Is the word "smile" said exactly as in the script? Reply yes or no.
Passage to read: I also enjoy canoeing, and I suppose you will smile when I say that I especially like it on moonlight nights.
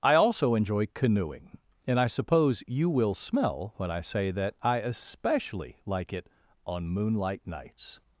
no